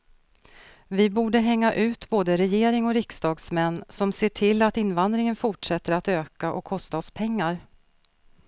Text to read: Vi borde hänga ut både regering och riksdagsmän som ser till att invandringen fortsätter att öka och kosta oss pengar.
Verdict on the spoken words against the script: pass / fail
pass